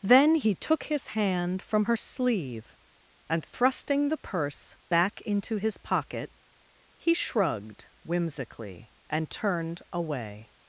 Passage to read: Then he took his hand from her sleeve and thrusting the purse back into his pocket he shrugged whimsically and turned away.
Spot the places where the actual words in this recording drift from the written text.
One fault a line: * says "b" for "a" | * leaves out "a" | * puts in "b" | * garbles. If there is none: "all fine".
all fine